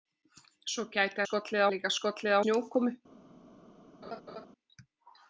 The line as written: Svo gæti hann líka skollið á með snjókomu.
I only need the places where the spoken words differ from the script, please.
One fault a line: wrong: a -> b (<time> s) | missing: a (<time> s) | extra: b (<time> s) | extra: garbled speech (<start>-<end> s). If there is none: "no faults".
wrong: hann -> skollið (1.2 s)
missing: með (2.4 s)